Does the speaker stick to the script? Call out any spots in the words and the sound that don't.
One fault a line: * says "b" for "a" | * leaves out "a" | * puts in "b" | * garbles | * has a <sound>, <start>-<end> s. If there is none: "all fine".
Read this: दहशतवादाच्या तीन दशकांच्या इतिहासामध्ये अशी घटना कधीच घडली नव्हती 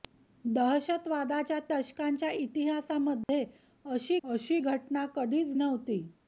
* leaves out "तीन"
* has a dropout, 3.2-3.3 s
* puts in "अशी"
* leaves out "घडली"